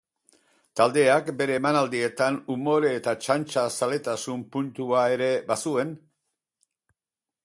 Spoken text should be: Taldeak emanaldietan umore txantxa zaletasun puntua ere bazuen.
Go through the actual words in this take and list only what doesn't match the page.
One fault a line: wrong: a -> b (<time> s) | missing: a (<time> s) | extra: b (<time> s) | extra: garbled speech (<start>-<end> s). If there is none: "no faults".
extra: bere (1.4 s)
extra: eta (3.0 s)